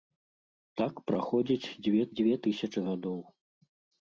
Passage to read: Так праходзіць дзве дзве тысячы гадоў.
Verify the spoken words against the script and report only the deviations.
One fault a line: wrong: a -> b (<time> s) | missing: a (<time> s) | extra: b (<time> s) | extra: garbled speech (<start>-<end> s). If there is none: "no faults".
no faults